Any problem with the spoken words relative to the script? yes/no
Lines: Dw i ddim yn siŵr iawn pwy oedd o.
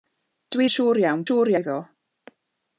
yes